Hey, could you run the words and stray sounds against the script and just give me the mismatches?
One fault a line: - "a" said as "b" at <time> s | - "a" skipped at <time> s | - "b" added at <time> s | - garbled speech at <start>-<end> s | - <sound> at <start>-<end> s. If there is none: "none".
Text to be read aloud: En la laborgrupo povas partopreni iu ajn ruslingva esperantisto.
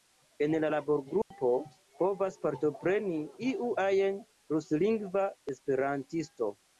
- dropout at 1.2-1.3 s